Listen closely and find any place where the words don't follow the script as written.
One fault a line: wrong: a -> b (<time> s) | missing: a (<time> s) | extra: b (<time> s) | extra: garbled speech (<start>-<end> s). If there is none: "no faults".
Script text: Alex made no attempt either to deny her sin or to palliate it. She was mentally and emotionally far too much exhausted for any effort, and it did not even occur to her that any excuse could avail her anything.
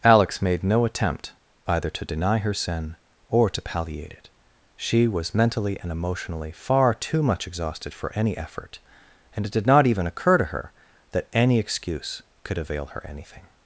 no faults